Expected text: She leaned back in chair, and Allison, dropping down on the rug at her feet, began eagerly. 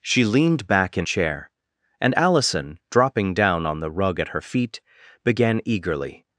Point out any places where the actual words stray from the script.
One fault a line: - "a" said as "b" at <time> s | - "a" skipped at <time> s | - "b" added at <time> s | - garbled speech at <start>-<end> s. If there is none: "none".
none